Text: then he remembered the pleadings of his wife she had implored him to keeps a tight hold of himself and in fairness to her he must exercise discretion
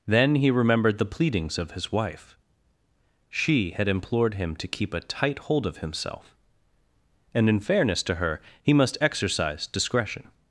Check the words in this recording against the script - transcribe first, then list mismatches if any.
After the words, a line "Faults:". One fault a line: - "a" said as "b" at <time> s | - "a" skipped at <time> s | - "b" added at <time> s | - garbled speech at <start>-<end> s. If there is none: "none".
then he remembered the pleadings of his wife she had implored him to keep a tight hold of himself and in fairness to her he must exercise discretion
Faults:
- "keeps" said as "keep" at 4.7 s